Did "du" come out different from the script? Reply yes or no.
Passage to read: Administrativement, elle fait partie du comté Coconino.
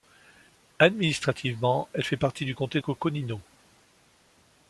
no